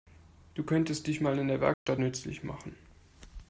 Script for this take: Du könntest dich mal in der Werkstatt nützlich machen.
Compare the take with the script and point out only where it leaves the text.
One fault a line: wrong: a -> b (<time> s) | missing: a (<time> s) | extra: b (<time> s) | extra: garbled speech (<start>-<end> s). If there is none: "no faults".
no faults